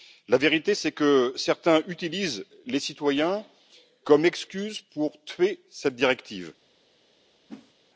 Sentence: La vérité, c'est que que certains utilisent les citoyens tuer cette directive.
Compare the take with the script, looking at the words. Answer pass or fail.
fail